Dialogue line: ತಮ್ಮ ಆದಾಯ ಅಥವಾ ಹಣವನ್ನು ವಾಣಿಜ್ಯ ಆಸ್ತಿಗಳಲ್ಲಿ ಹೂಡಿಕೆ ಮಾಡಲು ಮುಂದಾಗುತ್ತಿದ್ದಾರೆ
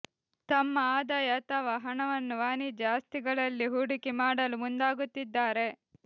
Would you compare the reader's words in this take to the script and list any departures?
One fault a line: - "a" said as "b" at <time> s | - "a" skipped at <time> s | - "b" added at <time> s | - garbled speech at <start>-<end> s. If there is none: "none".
none